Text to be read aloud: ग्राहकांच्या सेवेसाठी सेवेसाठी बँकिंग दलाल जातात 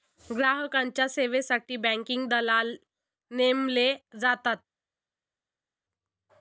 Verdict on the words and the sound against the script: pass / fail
fail